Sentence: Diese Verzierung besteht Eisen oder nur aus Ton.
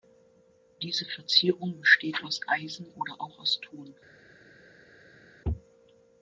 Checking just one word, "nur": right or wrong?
wrong